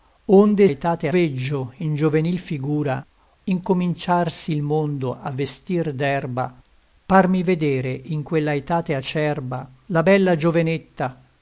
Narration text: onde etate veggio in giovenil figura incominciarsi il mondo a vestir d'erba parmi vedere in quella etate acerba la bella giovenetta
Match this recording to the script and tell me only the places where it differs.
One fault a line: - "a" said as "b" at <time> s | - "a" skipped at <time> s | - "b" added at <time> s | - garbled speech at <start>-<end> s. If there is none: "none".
none